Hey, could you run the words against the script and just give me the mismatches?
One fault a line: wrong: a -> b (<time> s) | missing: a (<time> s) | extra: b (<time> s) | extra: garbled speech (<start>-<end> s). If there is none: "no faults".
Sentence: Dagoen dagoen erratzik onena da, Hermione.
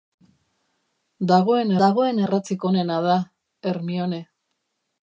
no faults